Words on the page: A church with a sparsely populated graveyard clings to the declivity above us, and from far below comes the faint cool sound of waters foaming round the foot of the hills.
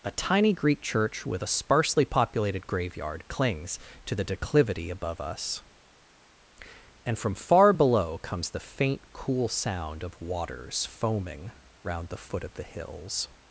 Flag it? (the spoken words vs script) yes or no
yes